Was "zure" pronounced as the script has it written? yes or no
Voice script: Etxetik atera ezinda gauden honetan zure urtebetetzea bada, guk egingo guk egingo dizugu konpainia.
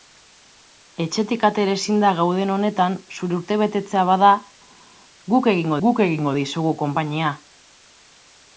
yes